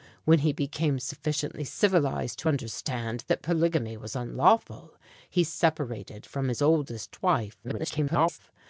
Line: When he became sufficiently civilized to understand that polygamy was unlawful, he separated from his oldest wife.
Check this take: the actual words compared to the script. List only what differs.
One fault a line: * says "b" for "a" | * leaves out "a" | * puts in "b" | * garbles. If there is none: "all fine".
* garbles